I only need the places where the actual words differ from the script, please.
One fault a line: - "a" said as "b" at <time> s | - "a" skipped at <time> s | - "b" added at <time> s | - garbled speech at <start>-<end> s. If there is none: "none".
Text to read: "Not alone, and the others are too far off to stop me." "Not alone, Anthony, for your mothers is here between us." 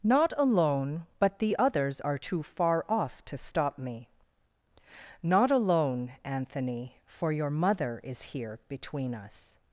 - "and" said as "but" at 1.2 s
- "mothers" said as "mother" at 7.5 s